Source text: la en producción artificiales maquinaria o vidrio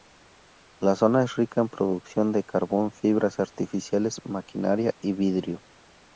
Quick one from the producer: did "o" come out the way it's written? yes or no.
no